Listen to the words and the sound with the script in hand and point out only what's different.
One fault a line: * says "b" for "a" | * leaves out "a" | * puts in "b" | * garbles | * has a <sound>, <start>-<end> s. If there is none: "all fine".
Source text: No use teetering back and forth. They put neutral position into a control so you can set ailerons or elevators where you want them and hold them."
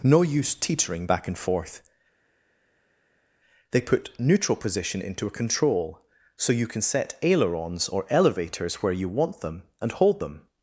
all fine